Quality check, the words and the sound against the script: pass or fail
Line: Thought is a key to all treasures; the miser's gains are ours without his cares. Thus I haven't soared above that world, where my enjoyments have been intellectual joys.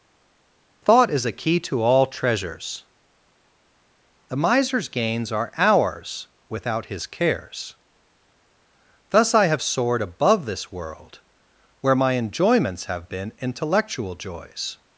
fail